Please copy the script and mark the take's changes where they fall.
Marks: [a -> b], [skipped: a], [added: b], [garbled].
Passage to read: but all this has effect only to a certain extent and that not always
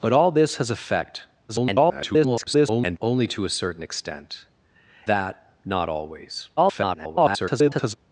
but all this has effect [garbled] only to a certain extent [skipped: and] that not always [garbled]